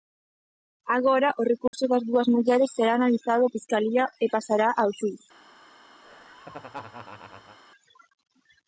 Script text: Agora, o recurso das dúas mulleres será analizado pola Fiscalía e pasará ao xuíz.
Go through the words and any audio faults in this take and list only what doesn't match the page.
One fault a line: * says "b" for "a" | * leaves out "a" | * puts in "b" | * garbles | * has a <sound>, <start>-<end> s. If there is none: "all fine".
* has a dropout, 1.7-1.7 s
* leaves out "pola"
* has a laugh, 6.0-7.6 s